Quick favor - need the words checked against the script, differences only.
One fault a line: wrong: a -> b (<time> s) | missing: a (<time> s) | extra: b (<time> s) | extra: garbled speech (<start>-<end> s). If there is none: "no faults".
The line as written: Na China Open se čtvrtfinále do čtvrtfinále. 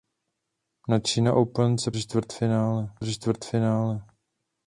no faults